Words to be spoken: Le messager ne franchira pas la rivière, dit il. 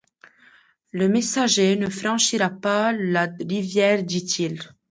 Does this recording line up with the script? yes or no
yes